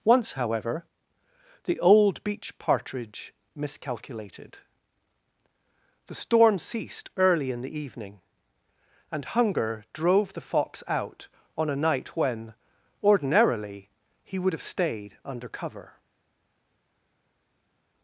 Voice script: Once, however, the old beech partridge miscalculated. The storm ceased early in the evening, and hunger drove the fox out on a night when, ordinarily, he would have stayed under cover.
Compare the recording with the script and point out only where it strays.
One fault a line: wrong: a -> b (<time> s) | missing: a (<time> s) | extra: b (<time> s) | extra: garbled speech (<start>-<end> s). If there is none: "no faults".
no faults